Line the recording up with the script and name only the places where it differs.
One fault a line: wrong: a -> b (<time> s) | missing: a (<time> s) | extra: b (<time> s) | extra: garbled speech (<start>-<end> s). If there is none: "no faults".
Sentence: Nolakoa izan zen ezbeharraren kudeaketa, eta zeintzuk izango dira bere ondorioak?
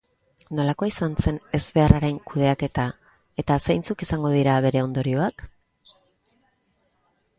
no faults